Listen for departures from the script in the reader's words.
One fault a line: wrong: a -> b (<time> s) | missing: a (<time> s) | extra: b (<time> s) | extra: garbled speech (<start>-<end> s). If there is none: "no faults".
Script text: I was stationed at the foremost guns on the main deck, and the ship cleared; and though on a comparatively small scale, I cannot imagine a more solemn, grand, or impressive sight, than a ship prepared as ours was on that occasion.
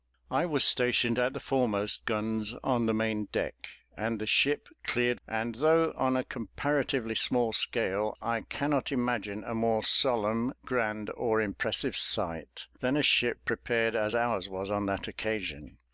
no faults